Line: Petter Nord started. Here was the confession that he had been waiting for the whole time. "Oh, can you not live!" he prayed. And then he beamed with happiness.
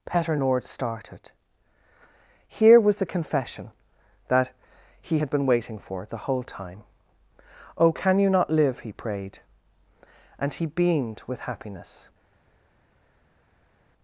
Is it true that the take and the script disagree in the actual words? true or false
true